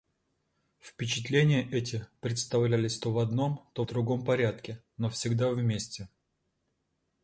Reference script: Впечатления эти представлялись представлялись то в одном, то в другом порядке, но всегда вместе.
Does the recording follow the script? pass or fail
fail